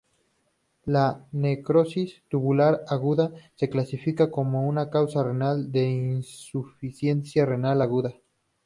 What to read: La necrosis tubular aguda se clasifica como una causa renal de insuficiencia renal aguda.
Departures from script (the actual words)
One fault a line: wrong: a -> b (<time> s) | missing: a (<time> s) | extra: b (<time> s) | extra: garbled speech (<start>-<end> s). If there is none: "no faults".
no faults